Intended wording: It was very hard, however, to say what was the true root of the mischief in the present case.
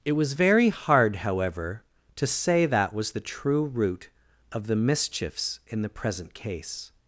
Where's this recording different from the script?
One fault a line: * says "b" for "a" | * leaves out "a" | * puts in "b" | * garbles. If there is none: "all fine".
* says "that" for "what"
* says "mischiefs" for "mischief"